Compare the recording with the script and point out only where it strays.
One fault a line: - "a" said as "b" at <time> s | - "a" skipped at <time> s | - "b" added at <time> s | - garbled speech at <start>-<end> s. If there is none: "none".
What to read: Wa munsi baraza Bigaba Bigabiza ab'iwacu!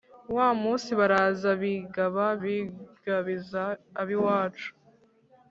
none